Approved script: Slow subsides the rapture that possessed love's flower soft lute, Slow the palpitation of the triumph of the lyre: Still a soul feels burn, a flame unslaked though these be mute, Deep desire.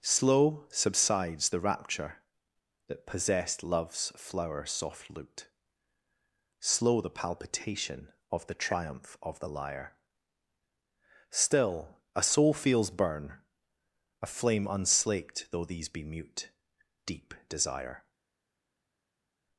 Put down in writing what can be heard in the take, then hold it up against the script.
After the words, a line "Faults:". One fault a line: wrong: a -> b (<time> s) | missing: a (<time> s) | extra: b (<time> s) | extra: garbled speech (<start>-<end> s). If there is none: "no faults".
Slow subsides the rapture that possessed love's flower soft lute, Slow the palpitation of the triumph of the lyre: Still a soul feels burn, a flame unslaked though these be mute, Deep desire.
Faults:
no faults